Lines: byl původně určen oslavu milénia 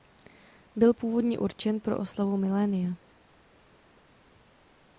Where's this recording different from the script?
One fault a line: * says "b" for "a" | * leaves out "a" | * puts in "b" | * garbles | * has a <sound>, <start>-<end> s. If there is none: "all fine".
* puts in "pro"